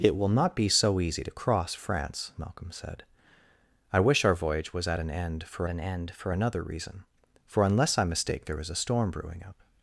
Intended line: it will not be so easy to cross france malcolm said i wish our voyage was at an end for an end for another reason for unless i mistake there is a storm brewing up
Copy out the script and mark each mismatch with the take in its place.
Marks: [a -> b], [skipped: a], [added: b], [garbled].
it will not be so easy to cross france malcolm said i wish our voyage was at an end for an end for another reason for unless i mistake there is a storm brewing up